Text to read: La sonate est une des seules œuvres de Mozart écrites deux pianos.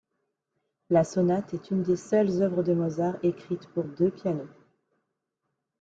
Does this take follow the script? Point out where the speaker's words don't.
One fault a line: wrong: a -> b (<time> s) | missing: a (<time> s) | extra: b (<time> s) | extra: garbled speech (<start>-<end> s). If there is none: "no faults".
extra: pour (3.7 s)